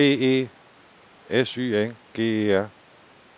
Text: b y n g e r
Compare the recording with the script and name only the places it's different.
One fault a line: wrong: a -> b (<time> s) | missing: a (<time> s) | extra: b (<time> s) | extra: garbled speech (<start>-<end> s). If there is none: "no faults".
extra: e s (0.2 s)